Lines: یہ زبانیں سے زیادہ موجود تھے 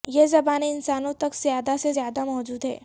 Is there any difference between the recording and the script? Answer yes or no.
yes